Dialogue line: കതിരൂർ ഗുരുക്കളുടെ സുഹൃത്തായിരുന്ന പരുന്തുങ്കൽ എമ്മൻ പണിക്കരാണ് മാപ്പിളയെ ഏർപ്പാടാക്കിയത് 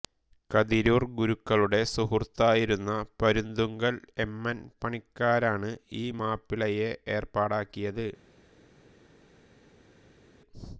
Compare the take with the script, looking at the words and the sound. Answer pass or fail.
fail